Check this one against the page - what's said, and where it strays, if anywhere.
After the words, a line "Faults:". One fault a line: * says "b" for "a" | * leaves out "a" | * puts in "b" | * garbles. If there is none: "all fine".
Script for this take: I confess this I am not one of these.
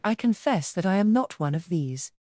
I confess that I am not one of these.
Faults:
* says "that" for "this"